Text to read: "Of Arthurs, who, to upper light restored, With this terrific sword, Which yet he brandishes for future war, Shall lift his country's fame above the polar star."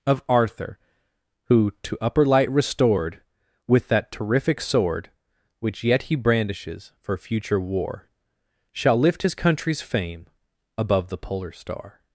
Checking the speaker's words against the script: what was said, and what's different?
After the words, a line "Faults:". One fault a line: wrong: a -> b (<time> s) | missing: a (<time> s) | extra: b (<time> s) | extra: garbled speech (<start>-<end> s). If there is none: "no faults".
"Of Arthur, who, to upper light restored, With that terrific sword, Which yet he brandishes for future war, Shall lift his country's fame above the polar star."
Faults:
wrong: Arthurs -> Arthur (0.3 s)
wrong: this -> that (3.9 s)